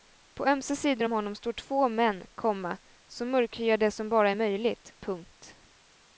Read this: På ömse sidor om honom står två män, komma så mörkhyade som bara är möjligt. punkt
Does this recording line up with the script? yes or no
yes